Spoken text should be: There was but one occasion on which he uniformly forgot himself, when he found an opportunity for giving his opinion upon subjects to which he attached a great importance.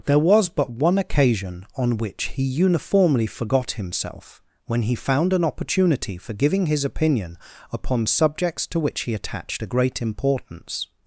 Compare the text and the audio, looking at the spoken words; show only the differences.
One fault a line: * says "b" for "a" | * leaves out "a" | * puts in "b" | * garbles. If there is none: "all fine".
all fine